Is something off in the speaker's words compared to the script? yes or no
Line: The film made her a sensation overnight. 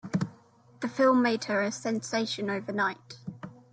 no